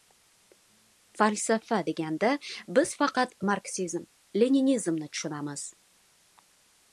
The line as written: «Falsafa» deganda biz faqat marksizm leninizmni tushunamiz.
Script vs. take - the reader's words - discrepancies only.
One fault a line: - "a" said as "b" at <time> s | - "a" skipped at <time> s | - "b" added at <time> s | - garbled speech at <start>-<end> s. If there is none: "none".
none